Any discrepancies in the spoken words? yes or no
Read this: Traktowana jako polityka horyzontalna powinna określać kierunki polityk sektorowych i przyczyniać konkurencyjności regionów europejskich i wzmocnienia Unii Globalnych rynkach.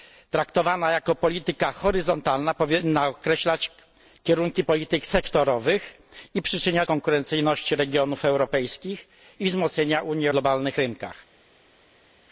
no